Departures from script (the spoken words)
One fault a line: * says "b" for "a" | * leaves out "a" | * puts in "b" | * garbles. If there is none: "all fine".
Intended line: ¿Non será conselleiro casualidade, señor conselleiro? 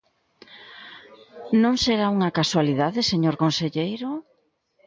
* says "unha" for "conselleiro"